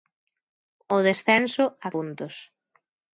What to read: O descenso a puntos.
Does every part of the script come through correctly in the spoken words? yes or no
yes